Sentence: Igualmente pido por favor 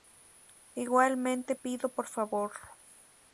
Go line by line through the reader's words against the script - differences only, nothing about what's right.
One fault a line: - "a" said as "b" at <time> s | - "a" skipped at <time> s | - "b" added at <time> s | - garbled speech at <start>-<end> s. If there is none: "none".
none